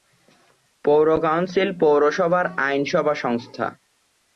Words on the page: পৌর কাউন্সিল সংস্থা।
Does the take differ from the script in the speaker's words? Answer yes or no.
yes